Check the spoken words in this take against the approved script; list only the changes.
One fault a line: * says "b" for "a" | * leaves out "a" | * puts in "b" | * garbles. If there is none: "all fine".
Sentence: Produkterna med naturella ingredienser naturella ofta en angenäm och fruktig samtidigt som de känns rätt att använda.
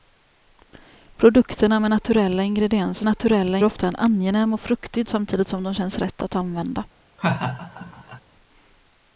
all fine